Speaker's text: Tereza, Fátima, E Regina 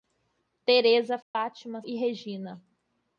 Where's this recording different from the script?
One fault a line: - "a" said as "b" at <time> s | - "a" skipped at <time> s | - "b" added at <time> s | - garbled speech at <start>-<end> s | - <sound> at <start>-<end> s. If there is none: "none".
- dropout at 1.2-1.3 s